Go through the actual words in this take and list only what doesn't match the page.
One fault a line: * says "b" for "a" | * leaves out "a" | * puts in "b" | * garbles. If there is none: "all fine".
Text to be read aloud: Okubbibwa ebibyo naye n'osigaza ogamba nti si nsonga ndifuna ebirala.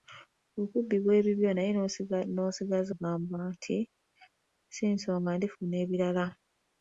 all fine